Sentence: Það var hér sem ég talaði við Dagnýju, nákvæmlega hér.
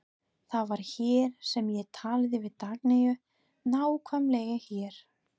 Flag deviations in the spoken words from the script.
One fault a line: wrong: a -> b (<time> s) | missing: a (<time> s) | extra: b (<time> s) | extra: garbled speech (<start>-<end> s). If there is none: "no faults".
no faults